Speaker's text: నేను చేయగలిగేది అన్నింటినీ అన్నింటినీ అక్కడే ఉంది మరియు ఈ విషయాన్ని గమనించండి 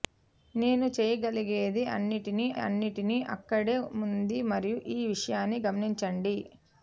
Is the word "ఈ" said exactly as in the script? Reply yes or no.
yes